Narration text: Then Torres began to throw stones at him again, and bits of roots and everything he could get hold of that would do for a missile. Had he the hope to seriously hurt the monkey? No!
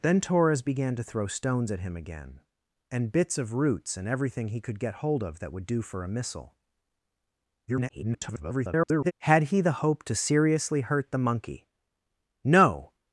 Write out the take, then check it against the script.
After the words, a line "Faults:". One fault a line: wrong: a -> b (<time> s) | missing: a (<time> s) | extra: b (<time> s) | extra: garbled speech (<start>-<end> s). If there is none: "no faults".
Then Torres began to throw stones at him again, and bits of roots and everything he could get hold of that would do for a missile. [garbled] Had he the hope to seriously hurt the monkey? No!
Faults:
extra: garbled speech (7.7-9.1 s)